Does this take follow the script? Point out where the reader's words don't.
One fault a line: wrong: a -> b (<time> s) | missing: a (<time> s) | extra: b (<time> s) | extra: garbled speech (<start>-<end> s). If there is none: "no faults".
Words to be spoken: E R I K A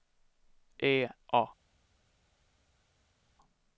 missing: R I K (1.1 s)